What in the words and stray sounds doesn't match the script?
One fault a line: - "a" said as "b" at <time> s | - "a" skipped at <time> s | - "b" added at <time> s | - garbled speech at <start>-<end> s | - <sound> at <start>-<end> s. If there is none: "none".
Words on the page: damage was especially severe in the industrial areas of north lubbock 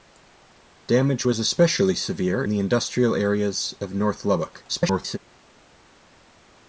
- "in" skipped at 2.5 s
- garbled speech at 4.7-5.2 s